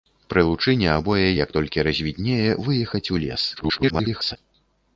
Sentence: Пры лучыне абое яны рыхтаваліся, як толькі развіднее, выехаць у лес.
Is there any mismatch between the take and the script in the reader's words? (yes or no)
yes